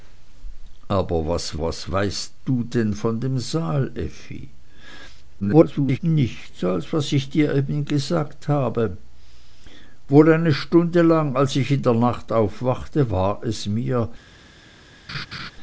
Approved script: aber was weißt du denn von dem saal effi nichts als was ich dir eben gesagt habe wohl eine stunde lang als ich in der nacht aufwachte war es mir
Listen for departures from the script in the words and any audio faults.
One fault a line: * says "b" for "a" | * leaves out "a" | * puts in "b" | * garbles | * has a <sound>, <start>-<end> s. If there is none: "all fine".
* puts in "was"
* garbles
* has a laugh, 15.1-15.5 s